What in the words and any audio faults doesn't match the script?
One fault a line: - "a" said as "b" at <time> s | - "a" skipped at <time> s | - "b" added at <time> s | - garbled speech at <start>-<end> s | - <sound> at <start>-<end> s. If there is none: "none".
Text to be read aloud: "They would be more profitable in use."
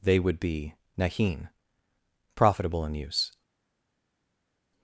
- "more" said as "nahin" at 1.0 s